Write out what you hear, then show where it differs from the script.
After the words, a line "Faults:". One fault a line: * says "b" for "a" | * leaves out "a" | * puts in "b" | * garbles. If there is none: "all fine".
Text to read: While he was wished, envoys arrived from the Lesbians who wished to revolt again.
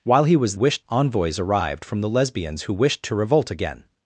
While he was wished, envoys arrived from the Lesbians who wished to revolt again.
Faults:
all fine